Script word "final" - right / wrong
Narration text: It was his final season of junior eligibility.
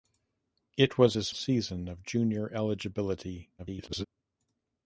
wrong